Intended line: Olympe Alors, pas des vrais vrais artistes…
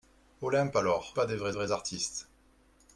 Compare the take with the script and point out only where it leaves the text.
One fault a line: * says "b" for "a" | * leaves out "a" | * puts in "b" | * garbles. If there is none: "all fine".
all fine